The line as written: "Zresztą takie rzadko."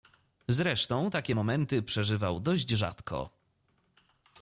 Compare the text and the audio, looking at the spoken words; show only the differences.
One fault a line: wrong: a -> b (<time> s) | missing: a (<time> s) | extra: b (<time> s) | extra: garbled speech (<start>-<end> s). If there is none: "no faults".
extra: momenty przeżywał dość (1.3 s)